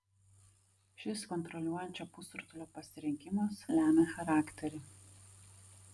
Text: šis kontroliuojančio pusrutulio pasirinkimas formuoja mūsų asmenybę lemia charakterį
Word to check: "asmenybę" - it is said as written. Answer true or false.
false